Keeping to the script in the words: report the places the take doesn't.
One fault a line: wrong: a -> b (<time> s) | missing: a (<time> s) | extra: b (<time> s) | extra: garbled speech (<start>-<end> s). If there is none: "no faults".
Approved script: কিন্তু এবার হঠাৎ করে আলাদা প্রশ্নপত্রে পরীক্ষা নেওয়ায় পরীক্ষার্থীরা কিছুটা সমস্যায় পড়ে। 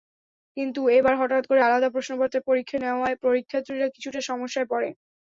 no faults